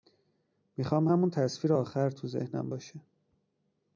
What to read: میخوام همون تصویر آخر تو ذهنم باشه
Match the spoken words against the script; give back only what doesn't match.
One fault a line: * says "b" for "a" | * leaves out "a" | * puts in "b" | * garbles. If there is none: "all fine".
all fine